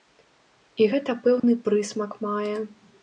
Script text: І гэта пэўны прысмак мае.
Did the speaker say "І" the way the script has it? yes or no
yes